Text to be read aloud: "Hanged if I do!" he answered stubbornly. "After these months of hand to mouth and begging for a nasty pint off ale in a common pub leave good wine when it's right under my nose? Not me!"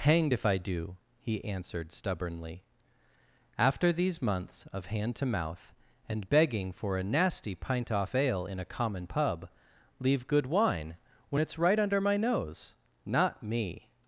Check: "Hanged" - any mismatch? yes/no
no